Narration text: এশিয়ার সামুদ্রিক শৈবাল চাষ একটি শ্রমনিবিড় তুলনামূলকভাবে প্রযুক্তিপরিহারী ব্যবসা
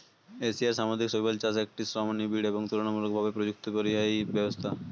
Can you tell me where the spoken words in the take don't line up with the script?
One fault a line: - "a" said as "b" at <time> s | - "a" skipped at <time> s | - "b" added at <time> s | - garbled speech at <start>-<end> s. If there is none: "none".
- "এবং" added at 2.5 s